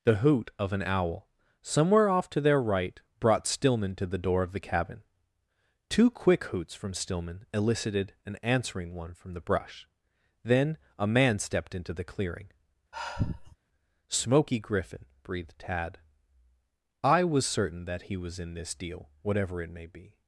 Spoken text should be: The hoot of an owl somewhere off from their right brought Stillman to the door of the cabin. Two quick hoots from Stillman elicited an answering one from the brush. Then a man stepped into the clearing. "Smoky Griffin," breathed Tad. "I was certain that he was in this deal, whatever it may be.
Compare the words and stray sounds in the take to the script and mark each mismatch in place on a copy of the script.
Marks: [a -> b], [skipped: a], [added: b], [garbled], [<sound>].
The hoot of an owl somewhere off [from -> to] their right brought Stillman to the door of the cabin. Two quick hoots from Stillman elicited an answering one from the brush. Then a man stepped into the clearing. [sigh] "Smoky Griffin," breathed Tad. "I was certain that he was in this deal, whatever it may be.